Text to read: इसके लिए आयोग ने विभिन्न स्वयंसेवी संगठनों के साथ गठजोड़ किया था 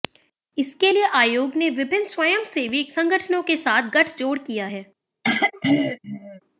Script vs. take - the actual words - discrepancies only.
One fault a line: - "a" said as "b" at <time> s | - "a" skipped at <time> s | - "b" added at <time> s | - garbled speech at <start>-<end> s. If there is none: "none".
- "था" said as "है" at 4.7 s